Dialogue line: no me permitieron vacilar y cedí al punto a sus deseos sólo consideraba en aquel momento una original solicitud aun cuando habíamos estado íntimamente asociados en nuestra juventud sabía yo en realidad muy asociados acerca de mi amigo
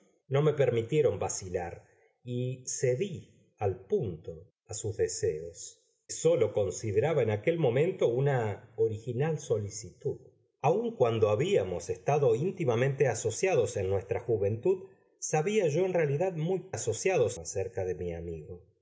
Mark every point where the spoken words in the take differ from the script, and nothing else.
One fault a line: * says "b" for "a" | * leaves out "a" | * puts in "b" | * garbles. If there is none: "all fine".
all fine